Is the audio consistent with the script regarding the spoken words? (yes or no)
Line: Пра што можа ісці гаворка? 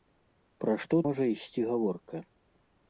yes